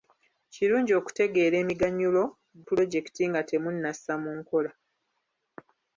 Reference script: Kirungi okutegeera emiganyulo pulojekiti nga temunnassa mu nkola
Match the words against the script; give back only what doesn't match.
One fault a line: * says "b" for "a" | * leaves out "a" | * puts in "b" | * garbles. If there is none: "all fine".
all fine